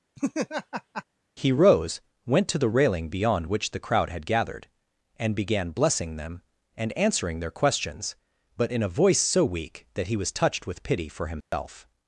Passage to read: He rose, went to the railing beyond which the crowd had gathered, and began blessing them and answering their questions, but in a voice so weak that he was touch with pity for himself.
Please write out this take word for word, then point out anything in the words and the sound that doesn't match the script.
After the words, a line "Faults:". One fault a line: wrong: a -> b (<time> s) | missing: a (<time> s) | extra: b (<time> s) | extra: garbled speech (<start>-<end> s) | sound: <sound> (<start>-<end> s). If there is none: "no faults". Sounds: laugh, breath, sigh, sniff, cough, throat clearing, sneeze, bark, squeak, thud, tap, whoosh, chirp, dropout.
He rose, went to the railing beyond which the crowd had gathered, and began blessing them and answering their questions, but in a voice so weak that he was touched with pity for himself.
Faults:
sound: laugh (0.2-1.0 s)
wrong: touch -> touched (10.3 s)
sound: dropout (11.4-11.5 s)